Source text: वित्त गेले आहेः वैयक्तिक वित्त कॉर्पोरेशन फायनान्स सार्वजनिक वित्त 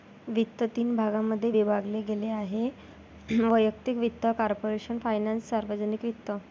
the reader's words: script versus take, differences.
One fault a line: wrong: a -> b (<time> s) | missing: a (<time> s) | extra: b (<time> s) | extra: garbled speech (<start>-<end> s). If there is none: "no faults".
extra: तीन भागांमध्ये विभागले (0.8 s)